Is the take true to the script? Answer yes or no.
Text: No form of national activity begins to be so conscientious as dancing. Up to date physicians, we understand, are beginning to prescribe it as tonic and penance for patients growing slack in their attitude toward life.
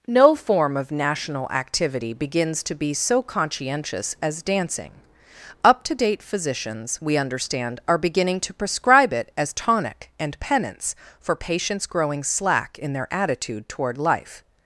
yes